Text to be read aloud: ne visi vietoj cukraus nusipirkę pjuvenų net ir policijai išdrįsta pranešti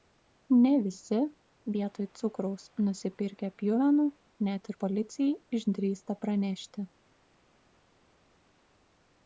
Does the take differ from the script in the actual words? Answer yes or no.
no